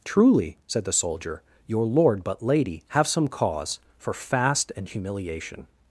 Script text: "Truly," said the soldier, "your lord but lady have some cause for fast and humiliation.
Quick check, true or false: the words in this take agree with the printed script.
true